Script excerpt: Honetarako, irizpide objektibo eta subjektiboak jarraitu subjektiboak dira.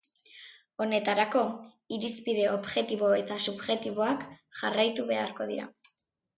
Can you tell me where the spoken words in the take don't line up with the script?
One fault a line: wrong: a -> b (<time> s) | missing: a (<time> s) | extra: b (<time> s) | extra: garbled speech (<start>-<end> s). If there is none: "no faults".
wrong: subjektiboak -> beharko (5.1 s)